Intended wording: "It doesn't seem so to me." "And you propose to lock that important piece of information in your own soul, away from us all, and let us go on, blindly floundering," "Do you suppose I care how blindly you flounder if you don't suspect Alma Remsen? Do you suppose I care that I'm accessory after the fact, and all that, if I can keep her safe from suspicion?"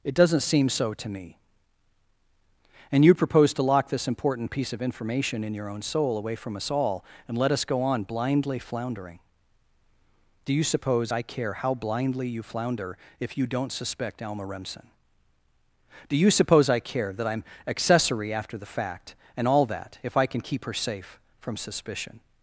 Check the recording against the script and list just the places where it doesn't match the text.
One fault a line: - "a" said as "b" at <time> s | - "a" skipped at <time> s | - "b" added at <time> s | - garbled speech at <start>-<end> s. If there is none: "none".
- "that" said as "this" at 3.9 s